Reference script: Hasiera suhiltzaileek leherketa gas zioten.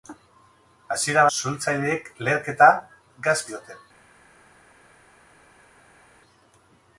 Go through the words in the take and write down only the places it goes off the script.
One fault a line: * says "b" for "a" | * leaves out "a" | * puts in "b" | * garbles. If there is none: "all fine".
all fine